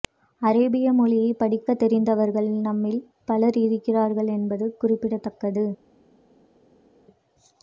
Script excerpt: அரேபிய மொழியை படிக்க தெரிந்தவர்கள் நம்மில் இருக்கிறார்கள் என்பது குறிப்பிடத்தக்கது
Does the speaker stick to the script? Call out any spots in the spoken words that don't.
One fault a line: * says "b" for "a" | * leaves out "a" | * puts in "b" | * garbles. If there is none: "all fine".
* puts in "பலர்"